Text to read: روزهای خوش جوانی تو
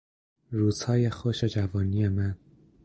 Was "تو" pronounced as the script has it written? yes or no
no